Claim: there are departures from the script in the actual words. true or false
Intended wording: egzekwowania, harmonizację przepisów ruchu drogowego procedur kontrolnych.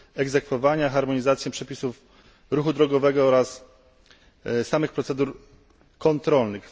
true